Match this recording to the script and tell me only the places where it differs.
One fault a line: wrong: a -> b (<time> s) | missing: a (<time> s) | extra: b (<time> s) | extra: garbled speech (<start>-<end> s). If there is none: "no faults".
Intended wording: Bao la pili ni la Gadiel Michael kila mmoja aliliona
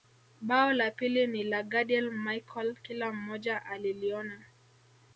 no faults